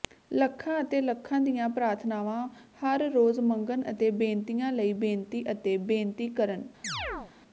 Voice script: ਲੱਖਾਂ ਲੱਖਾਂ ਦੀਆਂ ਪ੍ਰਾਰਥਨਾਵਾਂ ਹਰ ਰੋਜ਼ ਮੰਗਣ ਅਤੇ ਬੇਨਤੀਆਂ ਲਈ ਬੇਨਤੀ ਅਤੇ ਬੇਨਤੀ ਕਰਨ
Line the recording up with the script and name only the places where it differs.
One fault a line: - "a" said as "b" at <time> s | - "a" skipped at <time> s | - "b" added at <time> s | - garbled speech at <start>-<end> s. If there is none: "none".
- "ਅਤੇ" added at 0.8 s